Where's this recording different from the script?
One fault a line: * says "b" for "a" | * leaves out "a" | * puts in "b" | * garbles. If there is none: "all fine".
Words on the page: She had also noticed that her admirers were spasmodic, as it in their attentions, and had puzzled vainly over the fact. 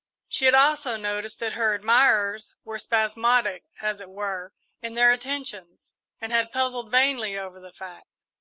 * puts in "were"